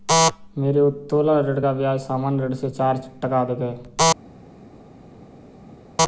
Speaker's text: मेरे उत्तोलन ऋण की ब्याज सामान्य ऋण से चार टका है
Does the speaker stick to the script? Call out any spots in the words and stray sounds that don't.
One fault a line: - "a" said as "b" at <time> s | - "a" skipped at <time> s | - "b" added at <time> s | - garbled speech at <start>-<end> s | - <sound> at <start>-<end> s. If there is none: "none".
- "की" said as "का" at 1.6 s
- "अधिक" added at 3.4 s